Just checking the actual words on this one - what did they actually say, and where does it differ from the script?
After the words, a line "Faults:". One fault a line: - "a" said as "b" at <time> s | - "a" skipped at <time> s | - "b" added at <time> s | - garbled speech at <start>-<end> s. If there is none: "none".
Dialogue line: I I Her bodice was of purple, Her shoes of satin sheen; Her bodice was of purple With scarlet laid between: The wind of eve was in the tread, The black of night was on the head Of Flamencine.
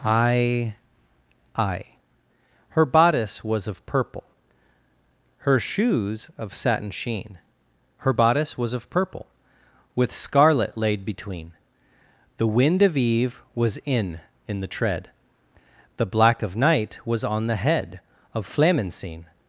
I I Her bodice was of purple, Her shoes of satin sheen; Her bodice was of purple With scarlet laid between: The wind of eve was in in the tread, The black of night was on the head Of Flamencine.
Faults:
- "in" added at 14.5 s